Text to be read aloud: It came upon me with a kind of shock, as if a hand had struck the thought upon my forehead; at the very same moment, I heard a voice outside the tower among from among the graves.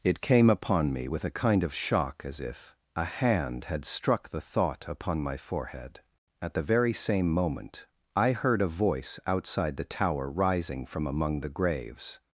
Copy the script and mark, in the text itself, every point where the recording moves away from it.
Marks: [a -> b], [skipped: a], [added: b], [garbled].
It came upon me with a kind of shock, as if a hand had struck the thought upon my forehead; at the very same moment, I heard a voice outside the tower [among -> rising] from among the graves.